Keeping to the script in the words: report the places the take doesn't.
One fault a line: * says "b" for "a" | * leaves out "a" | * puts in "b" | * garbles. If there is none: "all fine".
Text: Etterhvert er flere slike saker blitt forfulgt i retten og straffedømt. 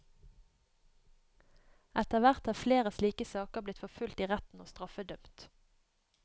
all fine